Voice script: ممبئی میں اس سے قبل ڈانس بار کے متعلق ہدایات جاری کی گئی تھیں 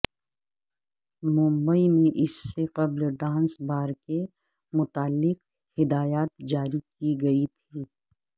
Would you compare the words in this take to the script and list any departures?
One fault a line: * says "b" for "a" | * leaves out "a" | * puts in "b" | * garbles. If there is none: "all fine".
all fine